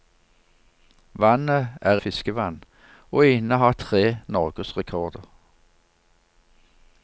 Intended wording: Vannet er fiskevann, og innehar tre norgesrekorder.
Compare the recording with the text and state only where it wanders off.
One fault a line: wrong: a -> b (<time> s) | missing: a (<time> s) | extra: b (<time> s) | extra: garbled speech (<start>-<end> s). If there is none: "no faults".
no faults